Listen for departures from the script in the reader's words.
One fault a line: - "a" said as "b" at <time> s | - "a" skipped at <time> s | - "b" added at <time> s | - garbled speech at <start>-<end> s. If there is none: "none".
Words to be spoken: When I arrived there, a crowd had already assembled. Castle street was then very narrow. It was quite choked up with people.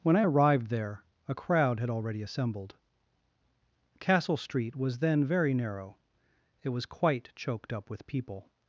none